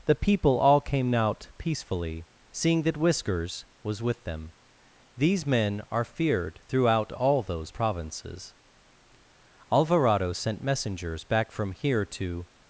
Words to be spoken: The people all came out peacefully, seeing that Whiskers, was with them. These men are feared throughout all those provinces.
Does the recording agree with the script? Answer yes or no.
no